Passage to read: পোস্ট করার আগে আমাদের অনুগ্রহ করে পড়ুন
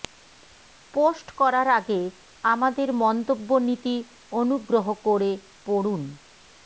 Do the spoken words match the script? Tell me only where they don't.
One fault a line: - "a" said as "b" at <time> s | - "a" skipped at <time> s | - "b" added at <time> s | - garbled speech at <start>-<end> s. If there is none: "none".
- "মন্তব্য নীতি" added at 3.0 s